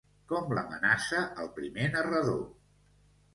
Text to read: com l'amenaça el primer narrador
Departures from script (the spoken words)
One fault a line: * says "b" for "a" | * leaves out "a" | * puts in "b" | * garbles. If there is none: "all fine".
all fine